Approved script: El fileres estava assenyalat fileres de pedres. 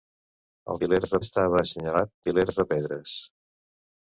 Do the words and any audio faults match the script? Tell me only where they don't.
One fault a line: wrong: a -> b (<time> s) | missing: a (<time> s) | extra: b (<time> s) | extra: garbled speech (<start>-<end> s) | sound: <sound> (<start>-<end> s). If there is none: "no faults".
no faults